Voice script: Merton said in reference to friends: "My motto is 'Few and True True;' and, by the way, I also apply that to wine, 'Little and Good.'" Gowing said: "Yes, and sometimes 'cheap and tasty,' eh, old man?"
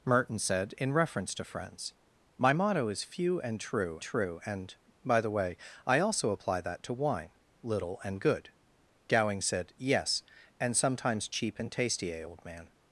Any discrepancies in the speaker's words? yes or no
no